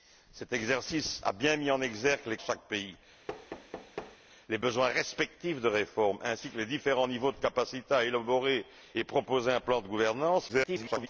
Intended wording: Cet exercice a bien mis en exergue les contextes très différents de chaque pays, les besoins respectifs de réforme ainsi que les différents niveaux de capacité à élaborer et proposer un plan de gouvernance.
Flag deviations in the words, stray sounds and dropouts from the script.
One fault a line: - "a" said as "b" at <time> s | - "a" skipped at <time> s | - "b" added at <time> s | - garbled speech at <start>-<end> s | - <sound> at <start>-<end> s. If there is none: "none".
- "contextes très différents" skipped at 2.4 s
- thud at 3.3-4.2 s
- garbled speech at 10.5-11.1 s